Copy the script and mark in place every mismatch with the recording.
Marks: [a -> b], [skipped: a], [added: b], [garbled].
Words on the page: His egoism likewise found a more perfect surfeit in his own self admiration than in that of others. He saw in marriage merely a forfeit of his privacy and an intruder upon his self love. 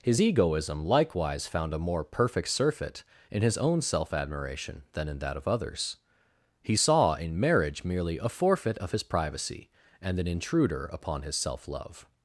His egoism likewise found a more perfect surfeit in his own self admiration than in that of others. He saw in marriage merely a forfeit of his privacy and an intruder upon his self love.